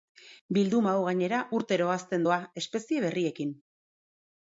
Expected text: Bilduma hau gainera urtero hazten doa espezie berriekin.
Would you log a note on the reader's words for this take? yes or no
no